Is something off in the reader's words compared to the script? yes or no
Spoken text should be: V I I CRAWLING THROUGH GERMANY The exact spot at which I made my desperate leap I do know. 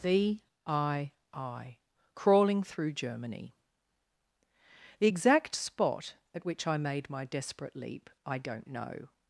yes